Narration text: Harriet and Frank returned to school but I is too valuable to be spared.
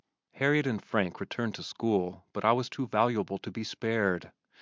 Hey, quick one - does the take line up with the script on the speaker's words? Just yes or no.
no